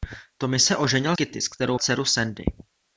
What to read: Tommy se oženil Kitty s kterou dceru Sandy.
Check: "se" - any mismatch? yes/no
no